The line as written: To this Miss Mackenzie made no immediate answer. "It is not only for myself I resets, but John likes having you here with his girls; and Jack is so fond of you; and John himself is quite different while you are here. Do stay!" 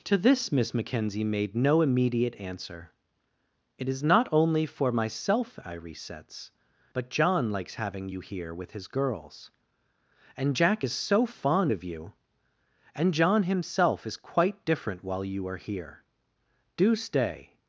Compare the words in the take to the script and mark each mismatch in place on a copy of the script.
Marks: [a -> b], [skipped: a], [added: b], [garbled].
To this Miss Mackenzie made no immediate answer. "It is not only for myself I resets, but John likes having you here with his girls; and Jack is so fond of you; and John himself is quite different while you are here. Do stay!"